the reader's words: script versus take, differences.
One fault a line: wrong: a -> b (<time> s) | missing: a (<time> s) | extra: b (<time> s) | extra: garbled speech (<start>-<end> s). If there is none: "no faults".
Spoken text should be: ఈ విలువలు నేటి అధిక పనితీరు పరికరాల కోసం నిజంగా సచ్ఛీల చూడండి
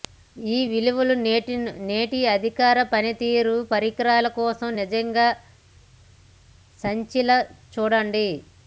no faults